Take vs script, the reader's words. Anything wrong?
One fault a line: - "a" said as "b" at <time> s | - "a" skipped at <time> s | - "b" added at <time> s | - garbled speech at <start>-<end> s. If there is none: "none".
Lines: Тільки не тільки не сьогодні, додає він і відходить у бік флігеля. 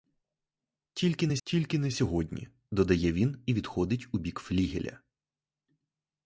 none